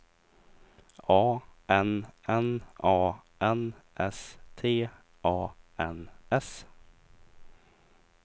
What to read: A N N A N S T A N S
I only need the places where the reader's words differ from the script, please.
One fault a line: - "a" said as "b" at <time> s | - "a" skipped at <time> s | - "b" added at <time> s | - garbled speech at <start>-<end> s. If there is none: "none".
none